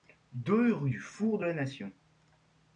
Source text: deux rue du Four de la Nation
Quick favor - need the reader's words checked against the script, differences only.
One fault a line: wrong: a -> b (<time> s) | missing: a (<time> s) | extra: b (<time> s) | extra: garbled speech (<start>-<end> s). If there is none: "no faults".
no faults